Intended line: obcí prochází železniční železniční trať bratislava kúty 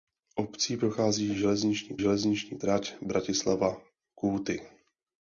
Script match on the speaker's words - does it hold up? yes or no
yes